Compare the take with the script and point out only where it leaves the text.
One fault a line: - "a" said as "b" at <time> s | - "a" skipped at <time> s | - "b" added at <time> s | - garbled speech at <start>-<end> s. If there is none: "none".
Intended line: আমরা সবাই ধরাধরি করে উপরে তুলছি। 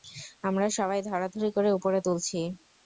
none